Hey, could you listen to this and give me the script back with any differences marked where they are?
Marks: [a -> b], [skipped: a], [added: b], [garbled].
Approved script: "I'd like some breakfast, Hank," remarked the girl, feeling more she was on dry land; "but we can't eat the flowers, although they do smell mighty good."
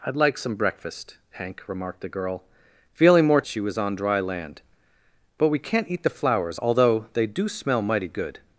"I'd like some breakfast, Hank," remarked the girl, feeling more she was on dry land; "but we can't eat the flowers, although they do smell mighty good."